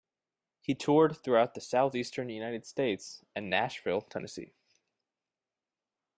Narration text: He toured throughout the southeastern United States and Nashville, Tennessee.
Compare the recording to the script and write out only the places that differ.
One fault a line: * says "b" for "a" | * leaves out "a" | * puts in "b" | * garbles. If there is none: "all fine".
all fine